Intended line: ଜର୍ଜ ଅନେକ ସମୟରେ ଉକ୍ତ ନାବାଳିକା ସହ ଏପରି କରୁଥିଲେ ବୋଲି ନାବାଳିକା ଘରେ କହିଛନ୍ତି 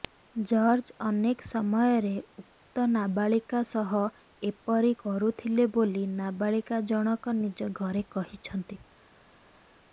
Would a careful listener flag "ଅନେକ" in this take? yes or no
no